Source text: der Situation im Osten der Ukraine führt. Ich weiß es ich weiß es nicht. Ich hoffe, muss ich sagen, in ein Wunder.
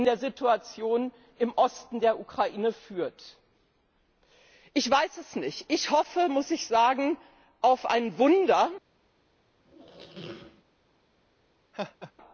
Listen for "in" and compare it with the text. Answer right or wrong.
wrong